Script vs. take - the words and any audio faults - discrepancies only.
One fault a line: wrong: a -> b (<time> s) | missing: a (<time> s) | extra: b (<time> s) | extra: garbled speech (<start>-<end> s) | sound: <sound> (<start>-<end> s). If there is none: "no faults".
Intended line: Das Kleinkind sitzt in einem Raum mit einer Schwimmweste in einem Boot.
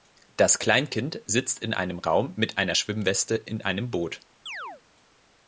sound: chirp (4.5-4.8 s)